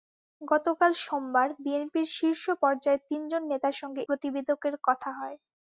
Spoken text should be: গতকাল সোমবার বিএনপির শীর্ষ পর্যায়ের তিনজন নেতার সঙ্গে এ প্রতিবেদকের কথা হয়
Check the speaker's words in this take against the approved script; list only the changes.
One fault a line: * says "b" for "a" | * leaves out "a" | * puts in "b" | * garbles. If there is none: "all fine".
* leaves out "এ"